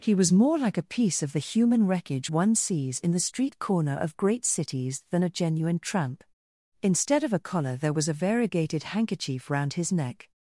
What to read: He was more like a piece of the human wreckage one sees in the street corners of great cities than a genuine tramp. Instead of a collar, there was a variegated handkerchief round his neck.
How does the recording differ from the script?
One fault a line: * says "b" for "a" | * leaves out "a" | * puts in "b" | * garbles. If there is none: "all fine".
* says "corner" for "corners"